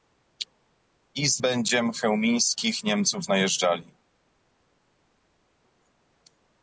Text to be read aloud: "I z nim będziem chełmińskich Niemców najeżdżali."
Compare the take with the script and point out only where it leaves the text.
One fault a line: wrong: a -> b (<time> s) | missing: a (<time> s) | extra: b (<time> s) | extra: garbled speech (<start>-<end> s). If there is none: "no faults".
missing: nim (1.4 s)